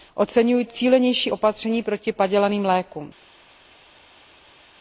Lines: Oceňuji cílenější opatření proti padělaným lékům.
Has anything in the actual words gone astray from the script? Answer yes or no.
no